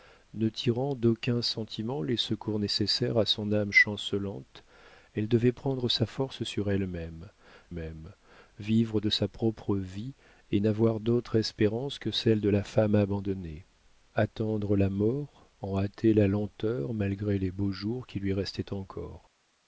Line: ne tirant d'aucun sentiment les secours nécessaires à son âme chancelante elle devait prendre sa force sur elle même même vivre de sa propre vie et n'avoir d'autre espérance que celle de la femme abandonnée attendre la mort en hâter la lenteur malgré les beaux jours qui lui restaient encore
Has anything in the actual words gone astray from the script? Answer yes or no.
no